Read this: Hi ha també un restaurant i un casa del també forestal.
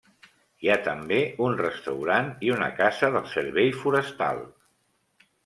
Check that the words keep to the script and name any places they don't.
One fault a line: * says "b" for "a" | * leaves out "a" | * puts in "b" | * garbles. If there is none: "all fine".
* says "una" for "un"
* says "servei" for "també"